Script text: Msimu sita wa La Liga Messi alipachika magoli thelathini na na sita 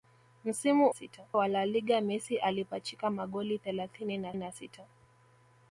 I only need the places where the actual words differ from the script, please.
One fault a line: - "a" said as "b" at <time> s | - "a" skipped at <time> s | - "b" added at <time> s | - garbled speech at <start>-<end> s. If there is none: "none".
none